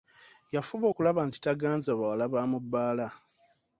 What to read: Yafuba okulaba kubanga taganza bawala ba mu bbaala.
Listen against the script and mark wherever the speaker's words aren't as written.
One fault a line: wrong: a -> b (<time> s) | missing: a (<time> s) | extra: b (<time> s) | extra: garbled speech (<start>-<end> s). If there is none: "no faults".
wrong: kubanga -> nti (1.3 s)